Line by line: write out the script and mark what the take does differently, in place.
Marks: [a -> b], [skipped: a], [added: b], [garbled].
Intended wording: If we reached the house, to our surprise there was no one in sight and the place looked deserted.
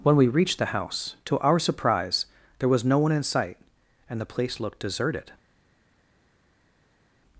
[If -> When] we reached the house, to our surprise there was no one in sight and the place looked deserted.